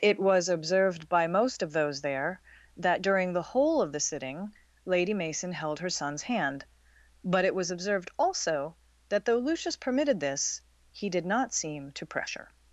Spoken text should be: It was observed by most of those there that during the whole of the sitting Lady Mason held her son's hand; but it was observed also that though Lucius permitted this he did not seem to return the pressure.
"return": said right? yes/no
no